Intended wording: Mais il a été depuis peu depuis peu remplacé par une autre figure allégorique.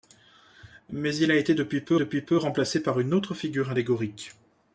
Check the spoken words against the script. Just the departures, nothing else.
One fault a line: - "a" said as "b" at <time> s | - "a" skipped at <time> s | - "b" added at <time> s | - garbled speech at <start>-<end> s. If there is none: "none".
none